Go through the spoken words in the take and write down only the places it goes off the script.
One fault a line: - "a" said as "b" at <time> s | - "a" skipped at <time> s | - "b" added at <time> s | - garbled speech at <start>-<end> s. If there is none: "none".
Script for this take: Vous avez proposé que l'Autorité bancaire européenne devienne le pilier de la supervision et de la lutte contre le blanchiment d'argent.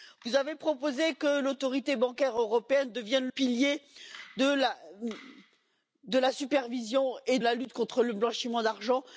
- "le" skipped at 3.3 s
- "de" skipped at 7.4 s